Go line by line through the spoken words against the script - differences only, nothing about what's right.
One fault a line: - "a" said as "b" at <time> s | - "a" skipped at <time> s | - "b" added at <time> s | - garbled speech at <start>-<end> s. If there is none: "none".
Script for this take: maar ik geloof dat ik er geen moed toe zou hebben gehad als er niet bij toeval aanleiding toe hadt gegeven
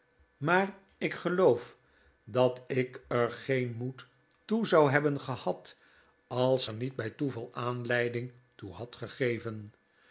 none